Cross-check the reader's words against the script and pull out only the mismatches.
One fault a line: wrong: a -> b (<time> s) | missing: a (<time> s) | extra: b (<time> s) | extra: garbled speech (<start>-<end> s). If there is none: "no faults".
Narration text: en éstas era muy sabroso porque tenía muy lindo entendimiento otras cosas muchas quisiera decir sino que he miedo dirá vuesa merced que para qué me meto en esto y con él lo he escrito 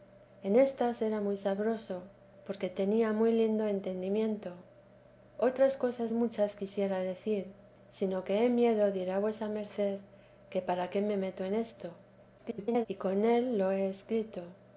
extra: garbled speech (12.4-12.9 s)